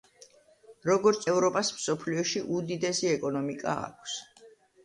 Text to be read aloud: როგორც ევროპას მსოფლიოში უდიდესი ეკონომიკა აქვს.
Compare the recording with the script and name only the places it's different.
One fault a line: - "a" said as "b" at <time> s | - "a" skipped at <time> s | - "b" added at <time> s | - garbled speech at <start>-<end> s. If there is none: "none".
none